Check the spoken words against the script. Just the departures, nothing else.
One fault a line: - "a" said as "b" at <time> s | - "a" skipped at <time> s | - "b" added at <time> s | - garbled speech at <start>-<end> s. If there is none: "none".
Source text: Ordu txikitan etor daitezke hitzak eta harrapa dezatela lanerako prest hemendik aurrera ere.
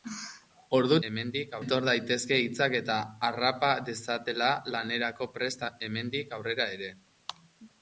- "txikitan" said as "hemendik" at 1.1 s